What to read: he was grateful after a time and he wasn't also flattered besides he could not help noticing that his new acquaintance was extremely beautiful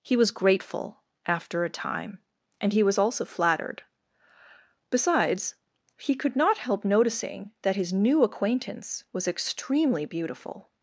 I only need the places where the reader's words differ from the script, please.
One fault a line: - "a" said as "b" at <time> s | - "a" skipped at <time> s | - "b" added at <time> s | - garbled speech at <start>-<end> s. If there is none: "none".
- "wasn't" said as "was" at 2.8 s